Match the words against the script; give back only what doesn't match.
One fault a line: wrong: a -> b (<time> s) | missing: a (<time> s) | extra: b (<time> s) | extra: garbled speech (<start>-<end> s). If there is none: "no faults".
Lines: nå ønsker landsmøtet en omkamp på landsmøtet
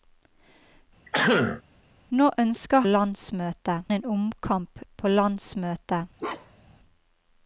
no faults